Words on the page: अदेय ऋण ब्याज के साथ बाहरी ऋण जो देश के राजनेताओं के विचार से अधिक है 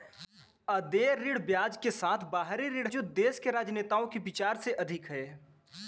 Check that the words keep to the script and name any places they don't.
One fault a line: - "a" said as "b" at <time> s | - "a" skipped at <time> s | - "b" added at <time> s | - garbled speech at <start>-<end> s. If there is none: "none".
none